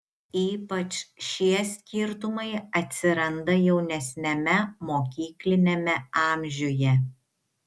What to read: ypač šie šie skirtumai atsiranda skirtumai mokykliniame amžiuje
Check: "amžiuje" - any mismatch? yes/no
no